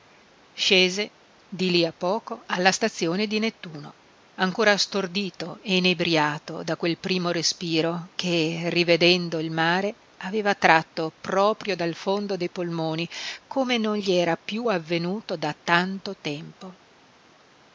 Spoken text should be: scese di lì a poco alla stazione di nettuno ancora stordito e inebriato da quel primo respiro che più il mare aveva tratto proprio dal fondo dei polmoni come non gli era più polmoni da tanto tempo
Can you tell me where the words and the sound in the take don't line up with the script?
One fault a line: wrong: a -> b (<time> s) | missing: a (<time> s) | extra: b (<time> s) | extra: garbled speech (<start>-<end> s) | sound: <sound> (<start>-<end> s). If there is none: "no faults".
wrong: più -> rivedendo (8.7 s)
wrong: polmoni -> avvenuto (14.7 s)